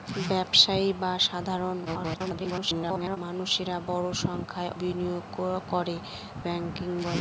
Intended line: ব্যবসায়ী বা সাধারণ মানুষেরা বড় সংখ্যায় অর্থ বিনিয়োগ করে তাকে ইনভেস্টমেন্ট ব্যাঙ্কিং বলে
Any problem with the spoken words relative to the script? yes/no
yes